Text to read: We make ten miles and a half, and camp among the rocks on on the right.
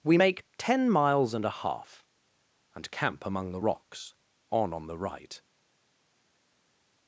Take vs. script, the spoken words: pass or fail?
pass